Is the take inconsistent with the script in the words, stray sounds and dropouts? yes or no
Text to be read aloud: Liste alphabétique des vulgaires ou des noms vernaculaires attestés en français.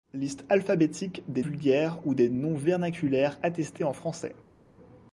no